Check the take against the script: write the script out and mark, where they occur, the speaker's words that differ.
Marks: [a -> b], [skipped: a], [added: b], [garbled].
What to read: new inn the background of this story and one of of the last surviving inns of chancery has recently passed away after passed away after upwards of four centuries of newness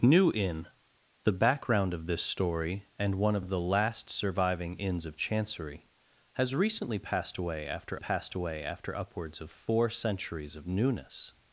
new inn the background of this story and one of of the last surviving inns of chancery has recently passed away after passed away after upwards of four centuries of newness